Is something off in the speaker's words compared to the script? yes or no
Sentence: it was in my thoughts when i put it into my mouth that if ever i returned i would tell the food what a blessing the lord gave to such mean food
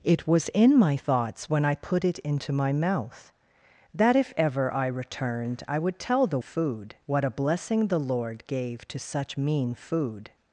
no